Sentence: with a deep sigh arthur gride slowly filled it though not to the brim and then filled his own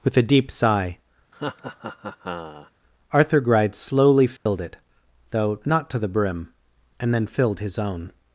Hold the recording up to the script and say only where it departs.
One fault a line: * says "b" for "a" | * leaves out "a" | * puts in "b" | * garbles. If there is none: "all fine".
all fine